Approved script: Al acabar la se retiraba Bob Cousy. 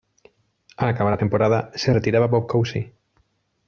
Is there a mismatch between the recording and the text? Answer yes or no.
yes